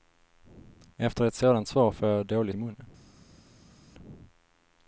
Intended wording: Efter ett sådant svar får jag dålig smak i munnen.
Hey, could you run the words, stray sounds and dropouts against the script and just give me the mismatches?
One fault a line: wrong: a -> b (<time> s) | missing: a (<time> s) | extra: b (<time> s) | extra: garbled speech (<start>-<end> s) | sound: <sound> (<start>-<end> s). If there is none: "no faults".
missing: smak (2.5 s)